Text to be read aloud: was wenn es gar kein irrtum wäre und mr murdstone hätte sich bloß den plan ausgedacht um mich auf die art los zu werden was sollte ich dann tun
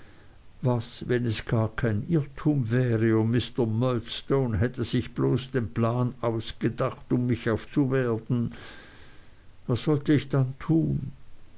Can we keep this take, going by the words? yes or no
no